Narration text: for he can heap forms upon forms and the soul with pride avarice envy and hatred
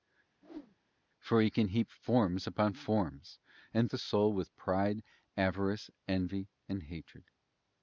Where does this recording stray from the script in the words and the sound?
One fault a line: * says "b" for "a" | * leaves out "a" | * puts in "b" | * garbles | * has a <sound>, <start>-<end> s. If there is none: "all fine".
* has a whoosh, 0.4-0.8 s